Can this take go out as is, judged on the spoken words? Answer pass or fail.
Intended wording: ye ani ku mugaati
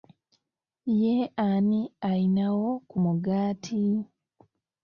fail